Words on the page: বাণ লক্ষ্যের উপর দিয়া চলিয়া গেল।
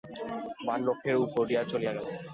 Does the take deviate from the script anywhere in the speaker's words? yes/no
no